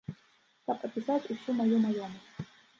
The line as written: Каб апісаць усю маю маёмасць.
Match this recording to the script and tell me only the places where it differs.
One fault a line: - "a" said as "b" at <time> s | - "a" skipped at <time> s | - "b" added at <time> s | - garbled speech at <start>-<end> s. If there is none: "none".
none